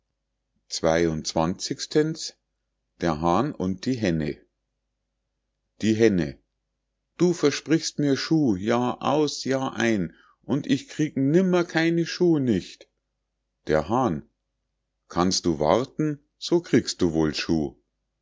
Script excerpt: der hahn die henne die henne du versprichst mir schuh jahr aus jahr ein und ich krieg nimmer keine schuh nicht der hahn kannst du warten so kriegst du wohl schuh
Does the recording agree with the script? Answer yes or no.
no